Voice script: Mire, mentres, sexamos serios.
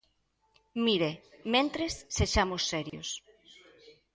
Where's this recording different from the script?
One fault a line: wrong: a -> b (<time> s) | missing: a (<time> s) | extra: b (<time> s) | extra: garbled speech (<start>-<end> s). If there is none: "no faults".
no faults